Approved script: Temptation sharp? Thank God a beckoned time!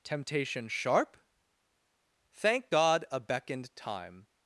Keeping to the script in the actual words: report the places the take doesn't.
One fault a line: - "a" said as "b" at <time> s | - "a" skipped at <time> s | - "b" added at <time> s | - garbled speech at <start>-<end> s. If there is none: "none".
none